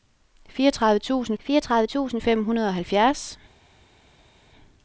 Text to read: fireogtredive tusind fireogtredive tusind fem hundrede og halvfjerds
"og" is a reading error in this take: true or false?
false